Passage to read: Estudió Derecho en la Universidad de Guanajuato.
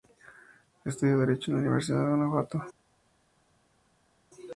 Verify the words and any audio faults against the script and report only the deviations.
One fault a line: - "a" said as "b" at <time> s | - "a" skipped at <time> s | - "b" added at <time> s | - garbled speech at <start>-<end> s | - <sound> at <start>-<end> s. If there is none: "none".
none